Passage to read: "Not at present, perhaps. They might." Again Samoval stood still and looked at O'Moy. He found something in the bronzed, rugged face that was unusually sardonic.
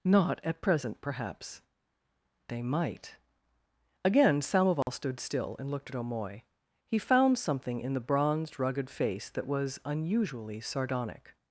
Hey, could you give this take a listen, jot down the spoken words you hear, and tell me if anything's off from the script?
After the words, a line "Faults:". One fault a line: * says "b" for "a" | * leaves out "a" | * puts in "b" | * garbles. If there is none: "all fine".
"Not at present, perhaps. They might." Again Samoval stood still and looked at O'Moy. He found something in the bronzed, rugged face that was unusually sardonic.
Faults:
all fine